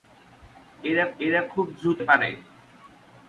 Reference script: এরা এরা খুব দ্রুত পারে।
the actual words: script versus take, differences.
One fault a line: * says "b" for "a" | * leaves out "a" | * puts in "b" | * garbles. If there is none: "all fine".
all fine